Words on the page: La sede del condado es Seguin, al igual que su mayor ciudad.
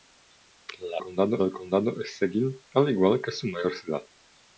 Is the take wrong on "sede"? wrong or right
wrong